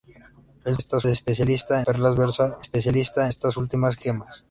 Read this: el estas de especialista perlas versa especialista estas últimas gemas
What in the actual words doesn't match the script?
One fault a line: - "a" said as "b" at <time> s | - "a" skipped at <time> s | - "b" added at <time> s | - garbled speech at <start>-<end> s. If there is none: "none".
none